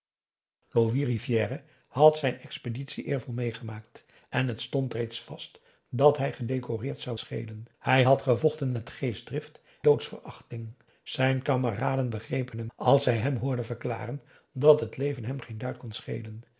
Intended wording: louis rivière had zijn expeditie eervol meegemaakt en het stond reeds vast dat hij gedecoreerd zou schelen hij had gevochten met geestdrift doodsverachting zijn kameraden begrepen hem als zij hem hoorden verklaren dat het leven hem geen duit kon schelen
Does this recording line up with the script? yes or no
yes